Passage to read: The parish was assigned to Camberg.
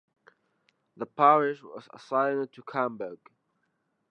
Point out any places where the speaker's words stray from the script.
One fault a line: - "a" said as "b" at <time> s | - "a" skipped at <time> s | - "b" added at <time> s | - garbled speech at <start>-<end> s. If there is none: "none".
none